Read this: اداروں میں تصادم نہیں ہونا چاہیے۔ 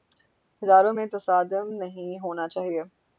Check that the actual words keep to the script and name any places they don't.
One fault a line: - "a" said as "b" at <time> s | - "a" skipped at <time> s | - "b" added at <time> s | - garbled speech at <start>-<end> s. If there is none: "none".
none